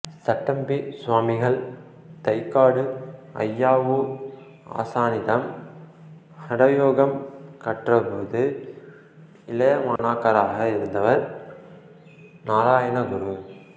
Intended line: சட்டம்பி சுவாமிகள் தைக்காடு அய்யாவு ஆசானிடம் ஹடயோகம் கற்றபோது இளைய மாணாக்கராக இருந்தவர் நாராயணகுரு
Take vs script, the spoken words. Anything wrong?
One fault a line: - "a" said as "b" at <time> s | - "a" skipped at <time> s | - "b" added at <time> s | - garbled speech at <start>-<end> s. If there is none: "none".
none